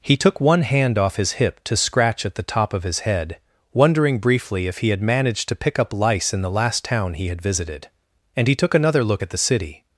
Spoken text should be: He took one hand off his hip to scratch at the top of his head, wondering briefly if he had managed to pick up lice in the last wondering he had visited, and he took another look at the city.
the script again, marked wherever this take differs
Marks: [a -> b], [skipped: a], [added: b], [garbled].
He took one hand off his hip to scratch at the top of his head, wondering briefly if he had managed to pick up lice in the last [wondering -> town] he had visited, and he took another look at the city.